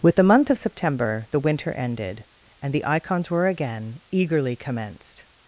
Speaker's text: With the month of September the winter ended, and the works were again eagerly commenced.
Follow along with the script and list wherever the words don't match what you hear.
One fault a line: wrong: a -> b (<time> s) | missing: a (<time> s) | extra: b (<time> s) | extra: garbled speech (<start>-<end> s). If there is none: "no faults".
wrong: works -> icons (2.9 s)